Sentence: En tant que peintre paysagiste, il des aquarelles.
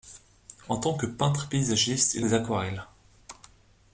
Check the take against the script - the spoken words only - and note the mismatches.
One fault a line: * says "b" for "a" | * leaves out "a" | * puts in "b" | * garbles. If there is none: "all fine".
all fine